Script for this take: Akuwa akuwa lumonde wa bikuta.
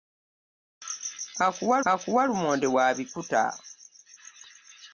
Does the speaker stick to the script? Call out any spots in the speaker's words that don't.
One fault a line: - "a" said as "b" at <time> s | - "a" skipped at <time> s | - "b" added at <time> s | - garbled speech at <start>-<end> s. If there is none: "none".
none